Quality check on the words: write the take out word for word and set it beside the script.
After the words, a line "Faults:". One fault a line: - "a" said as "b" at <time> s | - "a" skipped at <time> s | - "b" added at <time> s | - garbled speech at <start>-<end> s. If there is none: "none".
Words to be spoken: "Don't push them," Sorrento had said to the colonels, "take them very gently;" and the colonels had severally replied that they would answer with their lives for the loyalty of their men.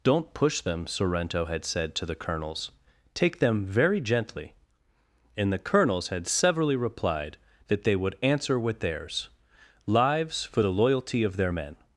"Don't push them," Sorrento had said to the colonels, "take them very gently;" and the colonels had severally replied that they would answer with theirs lives for the loyalty of their men.
Faults:
- "their" said as "theirs" at 8.8 s